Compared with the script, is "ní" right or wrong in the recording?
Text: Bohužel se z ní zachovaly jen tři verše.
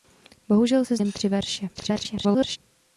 wrong